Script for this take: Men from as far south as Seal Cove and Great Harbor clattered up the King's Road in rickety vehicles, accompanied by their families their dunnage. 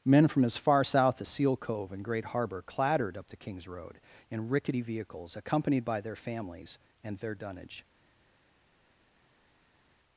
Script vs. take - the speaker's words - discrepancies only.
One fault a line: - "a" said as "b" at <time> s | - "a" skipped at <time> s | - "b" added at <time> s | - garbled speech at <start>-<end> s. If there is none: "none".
- "and" added at 7.0 s